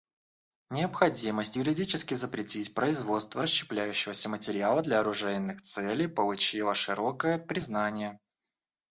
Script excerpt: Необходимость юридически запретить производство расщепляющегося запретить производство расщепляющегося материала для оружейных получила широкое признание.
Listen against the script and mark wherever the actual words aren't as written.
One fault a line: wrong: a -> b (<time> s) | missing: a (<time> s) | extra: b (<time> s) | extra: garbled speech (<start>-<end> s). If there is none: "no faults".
missing: запретить производство расщепляющегося (4.3 s)
extra: целей (5.6 s)